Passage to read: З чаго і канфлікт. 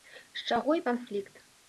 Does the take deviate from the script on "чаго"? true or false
false